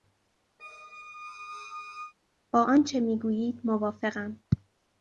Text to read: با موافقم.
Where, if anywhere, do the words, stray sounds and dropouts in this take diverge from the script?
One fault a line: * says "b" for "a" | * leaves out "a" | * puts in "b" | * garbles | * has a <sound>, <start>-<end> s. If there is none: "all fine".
* has a squeak, 0.6-2.1 s
* puts in "آنچه میگویید"